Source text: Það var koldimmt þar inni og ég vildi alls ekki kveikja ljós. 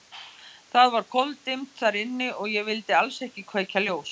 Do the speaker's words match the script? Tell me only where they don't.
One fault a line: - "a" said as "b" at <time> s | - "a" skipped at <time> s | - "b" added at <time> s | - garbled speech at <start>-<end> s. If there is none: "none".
none